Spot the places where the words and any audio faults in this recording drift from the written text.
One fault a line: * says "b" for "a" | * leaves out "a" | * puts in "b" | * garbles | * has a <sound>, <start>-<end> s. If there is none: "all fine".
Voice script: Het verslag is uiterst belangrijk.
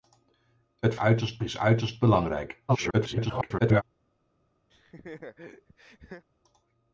* says "uiterst" for "verslag"
* garbles
* has a laugh, 4.7-6.2 s